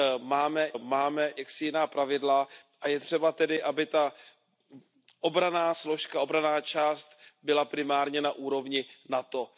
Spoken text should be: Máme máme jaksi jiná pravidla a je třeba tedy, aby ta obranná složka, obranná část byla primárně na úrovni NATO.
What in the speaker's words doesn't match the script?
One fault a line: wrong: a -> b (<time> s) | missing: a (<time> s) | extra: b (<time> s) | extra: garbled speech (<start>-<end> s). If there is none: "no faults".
no faults